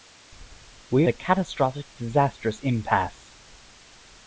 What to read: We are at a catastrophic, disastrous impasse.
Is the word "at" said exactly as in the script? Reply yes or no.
no